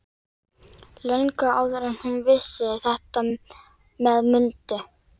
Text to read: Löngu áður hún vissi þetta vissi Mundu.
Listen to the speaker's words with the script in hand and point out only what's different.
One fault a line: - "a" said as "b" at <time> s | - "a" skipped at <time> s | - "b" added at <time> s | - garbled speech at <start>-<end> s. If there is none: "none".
- "en" added at 1.9 s
- "vissi" said as "með" at 3.3 s